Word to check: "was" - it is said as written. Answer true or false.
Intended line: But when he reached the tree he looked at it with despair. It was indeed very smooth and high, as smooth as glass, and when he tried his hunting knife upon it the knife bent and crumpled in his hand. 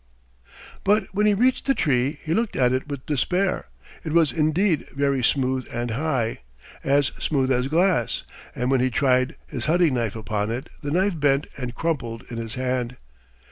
true